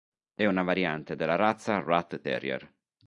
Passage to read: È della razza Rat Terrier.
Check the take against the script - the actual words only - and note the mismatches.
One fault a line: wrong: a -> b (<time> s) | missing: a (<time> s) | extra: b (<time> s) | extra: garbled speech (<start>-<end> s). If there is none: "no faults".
extra: una variante (0.5 s)